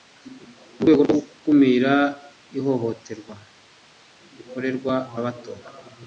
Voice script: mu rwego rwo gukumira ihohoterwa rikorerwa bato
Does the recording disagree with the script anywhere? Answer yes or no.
no